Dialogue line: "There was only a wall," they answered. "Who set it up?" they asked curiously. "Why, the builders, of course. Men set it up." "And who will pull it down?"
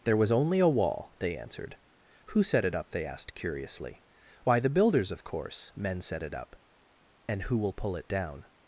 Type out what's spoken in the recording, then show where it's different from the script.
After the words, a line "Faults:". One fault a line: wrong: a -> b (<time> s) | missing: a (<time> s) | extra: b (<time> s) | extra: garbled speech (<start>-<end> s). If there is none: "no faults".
"There was only a wall," they answered. "Who set it up?" they asked curiously. "Why, the builders, of course. Men set it up." "And who will pull it down?"
Faults:
no faults